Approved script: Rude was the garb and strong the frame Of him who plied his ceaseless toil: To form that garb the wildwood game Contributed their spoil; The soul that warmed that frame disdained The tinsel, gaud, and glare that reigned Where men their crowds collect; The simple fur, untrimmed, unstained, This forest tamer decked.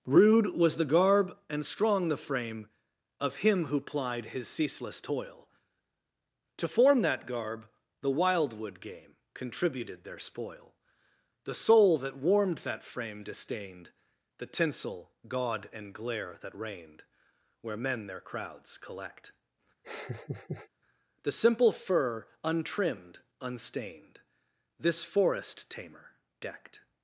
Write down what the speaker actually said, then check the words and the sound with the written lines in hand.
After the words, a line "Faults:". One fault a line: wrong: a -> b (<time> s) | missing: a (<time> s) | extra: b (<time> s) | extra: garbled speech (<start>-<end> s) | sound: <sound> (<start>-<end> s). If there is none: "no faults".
Rude was the garb and strong the frame Of him who plied his ceaseless toil: To form that garb the wildwood game Contributed their spoil; The soul that warmed that frame disdained The tinsel, gaud, and glare that reigned Where men their crowds collect; The simple fur, untrimmed, unstained, This forest tamer decked.
Faults:
sound: laugh (19.8-20.7 s)